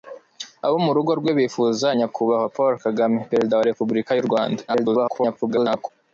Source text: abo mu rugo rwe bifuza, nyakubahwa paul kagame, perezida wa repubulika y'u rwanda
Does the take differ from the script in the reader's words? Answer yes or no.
yes